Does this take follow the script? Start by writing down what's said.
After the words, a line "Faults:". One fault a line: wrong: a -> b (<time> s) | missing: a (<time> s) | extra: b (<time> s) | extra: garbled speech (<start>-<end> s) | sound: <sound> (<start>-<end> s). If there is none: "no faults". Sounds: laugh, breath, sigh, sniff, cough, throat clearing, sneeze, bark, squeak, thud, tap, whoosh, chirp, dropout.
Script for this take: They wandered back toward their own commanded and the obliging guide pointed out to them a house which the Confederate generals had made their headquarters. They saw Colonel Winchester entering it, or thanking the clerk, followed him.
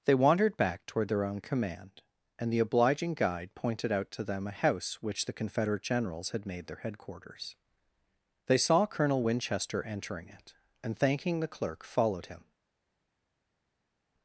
They wandered back toward their own command and the obliging guide pointed out to them a house which the Confederate generals had made their headquarters. They saw Colonel Winchester entering it, and thanking the clerk, followed him.
Faults:
wrong: commanded -> command (1.4 s)
wrong: or -> and (10.8 s)